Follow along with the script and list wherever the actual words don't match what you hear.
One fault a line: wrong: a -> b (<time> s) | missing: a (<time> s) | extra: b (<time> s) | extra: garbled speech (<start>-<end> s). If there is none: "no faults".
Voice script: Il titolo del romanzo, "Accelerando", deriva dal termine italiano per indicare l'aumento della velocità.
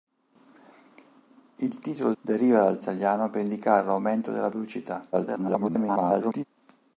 missing: del romanzo Accelerando (2.1 s)
missing: termine (2.8 s)
extra: garbled speech (5.1-6.5 s)